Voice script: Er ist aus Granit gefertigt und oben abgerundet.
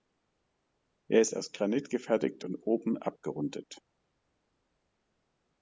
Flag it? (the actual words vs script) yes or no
no